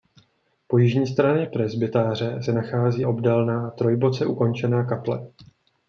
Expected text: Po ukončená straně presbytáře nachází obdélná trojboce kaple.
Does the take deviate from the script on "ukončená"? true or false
true